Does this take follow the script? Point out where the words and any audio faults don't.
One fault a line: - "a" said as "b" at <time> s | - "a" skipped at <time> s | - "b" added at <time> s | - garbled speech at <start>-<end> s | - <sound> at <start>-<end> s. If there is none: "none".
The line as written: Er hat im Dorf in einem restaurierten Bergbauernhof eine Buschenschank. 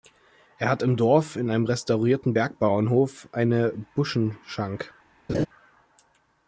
- laugh at 5.3-5.5 s